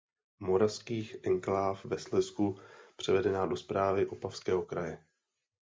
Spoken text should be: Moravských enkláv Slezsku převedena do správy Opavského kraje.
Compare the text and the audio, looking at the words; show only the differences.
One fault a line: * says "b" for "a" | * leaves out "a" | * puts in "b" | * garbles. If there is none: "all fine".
* puts in "ve"